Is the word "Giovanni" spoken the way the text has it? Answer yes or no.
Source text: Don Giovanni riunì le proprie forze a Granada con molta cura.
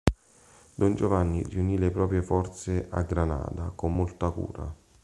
yes